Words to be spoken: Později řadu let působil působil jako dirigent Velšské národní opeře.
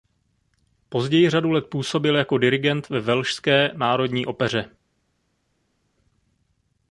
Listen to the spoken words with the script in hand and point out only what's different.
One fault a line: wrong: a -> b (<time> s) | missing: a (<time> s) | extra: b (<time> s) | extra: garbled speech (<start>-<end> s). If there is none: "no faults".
missing: působil (2.1 s)
extra: ve (2.9 s)